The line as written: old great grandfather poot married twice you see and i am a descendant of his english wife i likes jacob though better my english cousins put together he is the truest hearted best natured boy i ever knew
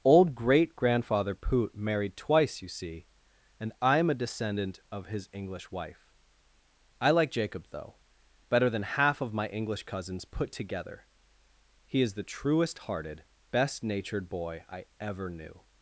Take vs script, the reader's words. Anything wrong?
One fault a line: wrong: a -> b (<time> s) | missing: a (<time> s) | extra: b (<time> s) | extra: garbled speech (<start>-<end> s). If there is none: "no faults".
wrong: likes -> like (7.1 s)
extra: than half of (8.7 s)